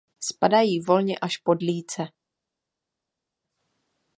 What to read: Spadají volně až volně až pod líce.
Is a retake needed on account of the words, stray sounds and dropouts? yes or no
yes